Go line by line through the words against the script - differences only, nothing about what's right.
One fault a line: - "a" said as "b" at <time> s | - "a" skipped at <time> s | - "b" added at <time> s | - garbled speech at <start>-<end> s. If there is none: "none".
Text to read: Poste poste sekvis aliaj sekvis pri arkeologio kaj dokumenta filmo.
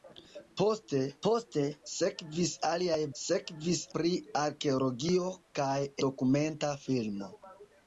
none